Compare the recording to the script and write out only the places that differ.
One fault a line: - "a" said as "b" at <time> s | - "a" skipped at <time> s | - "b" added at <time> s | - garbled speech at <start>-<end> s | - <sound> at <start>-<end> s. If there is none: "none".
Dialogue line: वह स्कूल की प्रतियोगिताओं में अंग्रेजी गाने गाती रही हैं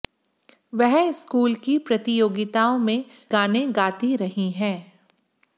- "अंग्रेजी" skipped at 3.0 s